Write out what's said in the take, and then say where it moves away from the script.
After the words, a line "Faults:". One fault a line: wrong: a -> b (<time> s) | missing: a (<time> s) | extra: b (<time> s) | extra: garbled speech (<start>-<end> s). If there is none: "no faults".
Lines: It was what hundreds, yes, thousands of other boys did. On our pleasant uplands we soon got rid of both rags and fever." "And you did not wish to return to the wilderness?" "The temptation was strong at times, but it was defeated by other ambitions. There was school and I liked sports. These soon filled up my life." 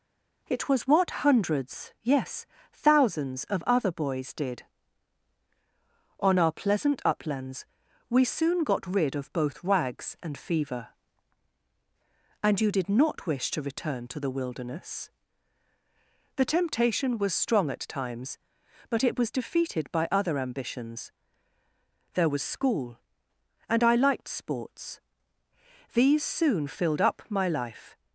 It was what hundreds, yes, thousands of other boys did. On our pleasant uplands we soon got rid of both rags and fever." "And you did not wish to return to the wilderness?" "The temptation was strong at times, but it was defeated by other ambitions. There was school and I liked sports. These soon filled up my life."
Faults:
no faults